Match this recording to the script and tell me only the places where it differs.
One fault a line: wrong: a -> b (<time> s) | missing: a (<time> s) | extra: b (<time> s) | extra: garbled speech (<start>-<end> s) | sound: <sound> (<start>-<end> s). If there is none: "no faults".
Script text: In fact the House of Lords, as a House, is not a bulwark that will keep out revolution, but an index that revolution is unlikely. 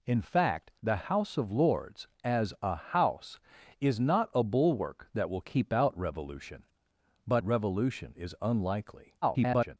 missing: an index that (7.4 s)
extra: garbled speech (9.2-9.8 s)